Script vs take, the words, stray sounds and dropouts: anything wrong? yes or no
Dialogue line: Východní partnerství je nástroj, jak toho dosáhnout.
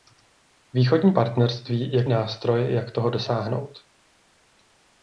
no